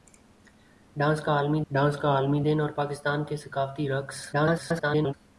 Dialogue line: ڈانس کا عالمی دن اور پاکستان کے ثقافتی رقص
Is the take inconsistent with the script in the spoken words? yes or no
yes